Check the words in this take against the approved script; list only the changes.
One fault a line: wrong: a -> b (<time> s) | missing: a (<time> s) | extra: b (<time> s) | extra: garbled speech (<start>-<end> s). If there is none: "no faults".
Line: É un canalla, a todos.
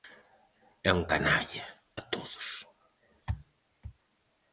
no faults